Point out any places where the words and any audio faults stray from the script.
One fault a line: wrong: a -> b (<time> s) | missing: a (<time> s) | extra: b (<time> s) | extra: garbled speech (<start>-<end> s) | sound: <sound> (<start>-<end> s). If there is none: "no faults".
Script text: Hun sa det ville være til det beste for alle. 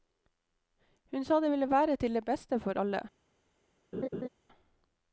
sound: laugh (3.9-4.3 s)